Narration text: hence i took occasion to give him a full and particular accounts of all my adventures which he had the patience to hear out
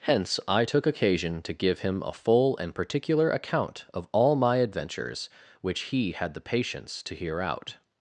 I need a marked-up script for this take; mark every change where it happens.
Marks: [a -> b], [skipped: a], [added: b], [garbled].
hence i took occasion to give him a full and particular [accounts -> account] of all my adventures which he had the patience to hear out